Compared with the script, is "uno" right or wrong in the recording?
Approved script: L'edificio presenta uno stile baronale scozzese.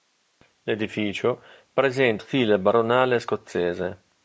wrong